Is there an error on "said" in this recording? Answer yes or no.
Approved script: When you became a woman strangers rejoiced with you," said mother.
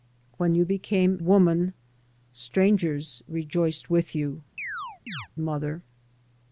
yes